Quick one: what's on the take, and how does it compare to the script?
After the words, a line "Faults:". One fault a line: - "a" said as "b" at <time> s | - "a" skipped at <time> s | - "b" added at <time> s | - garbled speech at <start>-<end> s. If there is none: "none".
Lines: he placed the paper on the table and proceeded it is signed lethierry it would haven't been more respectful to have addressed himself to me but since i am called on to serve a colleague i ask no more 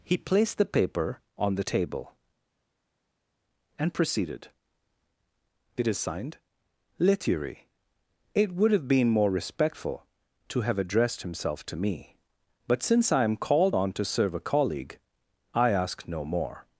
he placed the paper on the table and proceeded it is signed lethierry it would have been more respectful to have addressed himself to me but since i am called on to serve a colleague i ask no more
Faults:
- "haven't" said as "have" at 8.7 s